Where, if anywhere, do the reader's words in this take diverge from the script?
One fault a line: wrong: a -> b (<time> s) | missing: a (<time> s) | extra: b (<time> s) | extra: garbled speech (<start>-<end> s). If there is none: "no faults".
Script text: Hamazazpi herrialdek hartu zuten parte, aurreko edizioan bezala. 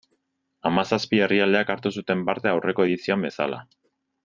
no faults